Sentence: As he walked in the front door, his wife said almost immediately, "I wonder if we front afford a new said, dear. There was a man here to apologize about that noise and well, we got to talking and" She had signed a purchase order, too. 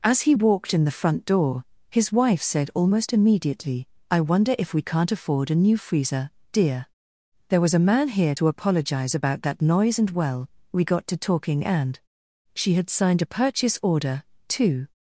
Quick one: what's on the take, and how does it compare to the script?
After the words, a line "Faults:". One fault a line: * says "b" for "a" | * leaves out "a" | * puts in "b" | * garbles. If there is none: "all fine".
As he walked in the front door, his wife said almost immediately, "I wonder if we can't afford a new freezer, dear. There was a man here to apologize about that noise and well, we got to talking and" She had signed a purchase order, too.
Faults:
* says "can't" for "front"
* says "freezer" for "said"